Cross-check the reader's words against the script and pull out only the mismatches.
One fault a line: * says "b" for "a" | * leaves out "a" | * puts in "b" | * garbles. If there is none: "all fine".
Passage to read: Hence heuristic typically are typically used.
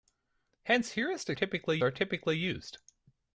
all fine